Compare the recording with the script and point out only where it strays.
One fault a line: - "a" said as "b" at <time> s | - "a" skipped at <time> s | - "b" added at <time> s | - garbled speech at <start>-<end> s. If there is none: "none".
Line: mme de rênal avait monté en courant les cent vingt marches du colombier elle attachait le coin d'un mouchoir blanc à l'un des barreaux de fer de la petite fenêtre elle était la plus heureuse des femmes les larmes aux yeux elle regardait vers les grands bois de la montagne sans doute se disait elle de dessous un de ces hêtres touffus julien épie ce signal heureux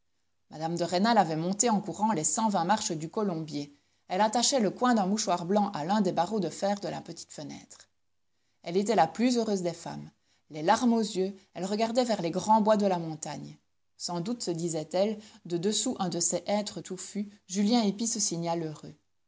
none